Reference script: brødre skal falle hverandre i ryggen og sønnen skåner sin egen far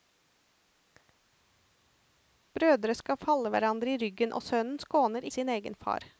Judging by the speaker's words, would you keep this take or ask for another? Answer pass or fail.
pass